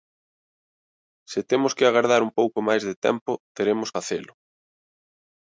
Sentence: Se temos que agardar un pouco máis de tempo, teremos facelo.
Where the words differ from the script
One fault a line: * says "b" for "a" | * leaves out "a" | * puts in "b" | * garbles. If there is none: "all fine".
all fine